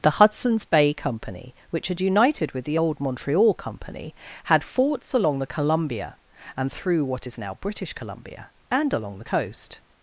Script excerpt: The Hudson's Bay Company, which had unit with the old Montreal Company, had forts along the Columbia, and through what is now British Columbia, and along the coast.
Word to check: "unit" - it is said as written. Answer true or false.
false